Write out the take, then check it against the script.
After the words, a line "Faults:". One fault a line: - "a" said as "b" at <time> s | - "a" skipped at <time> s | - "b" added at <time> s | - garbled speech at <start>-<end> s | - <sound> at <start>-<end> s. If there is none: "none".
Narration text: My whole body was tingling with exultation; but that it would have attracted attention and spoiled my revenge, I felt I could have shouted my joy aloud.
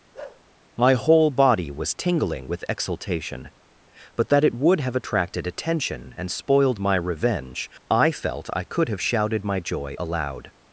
My whole body was tingling with exultation; but that it would have attracted attention and spoiled my revenge, I felt I could have shouted my joy aloud.
Faults:
- bark at 0.1-0.4 s